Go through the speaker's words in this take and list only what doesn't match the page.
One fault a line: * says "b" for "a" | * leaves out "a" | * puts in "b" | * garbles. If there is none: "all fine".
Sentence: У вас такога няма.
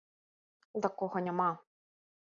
* leaves out "вас"